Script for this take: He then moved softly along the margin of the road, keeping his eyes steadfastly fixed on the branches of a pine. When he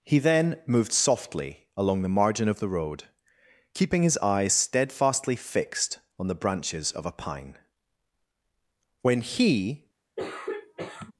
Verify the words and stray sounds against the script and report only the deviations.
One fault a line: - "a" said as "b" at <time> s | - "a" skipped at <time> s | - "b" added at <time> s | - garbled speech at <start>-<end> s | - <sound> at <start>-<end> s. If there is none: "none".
- throat clearing at 10.2-11.1 s